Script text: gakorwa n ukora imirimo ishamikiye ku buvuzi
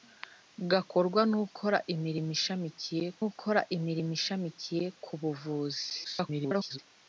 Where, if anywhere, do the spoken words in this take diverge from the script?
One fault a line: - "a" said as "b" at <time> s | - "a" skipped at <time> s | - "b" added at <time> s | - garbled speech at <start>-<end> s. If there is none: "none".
- "ukora imirimo ishamikiye" added at 3.3 s
- garbled speech at 6.0-6.8 s